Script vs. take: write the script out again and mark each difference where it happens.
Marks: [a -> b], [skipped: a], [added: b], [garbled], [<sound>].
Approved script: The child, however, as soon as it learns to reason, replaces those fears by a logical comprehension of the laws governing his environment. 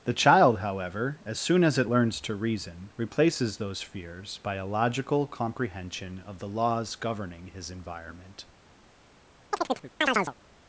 The child, however, as soon as it learns to reason, replaces those fears by a logical comprehension of the laws governing his environment. [chirp]